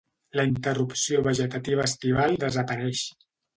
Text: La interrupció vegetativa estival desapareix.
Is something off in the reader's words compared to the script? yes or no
no